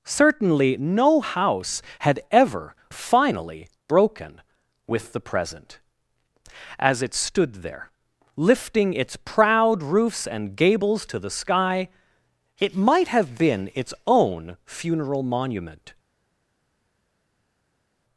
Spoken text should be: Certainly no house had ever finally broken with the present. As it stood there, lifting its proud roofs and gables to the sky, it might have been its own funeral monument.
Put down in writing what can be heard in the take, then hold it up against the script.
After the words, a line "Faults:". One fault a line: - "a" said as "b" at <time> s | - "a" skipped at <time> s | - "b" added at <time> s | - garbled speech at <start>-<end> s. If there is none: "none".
Certainly no house had ever finally broken with the present. As it stood there, lifting its proud roofs and gables to the sky, it might have been its own funeral monument.
Faults:
none